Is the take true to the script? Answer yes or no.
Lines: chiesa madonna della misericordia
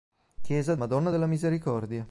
yes